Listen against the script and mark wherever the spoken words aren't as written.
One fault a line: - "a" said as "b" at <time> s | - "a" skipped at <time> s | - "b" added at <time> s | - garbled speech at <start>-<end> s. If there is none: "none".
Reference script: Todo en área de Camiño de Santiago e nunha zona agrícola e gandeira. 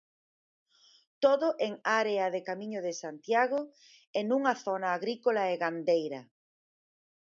none